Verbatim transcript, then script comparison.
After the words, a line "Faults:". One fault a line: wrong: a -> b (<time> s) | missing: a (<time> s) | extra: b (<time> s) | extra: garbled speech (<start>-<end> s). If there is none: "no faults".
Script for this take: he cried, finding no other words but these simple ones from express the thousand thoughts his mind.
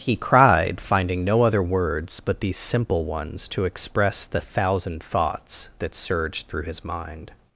he cried, finding no other words but these simple ones to express the thousand thoughts that surged through his mind.
Faults:
wrong: from -> to (3.5 s)
extra: that surged through (5.8 s)